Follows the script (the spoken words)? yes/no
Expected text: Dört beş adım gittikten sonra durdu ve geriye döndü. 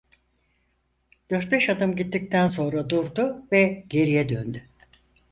yes